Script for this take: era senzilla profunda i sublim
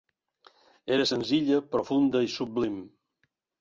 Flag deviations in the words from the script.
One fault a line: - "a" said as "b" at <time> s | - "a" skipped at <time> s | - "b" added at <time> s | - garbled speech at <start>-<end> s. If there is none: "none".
none